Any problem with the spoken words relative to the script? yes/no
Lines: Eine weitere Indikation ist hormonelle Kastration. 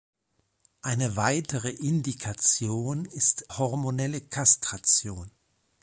no